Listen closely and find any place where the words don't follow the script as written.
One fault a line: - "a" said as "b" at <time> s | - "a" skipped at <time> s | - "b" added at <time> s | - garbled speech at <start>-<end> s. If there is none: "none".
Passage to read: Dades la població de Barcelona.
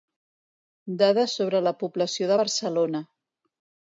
- "sobre" added at 1.4 s